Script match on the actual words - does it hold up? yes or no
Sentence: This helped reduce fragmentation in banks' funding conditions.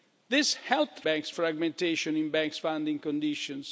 no